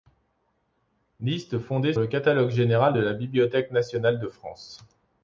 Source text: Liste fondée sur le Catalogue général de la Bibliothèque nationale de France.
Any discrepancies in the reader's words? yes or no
yes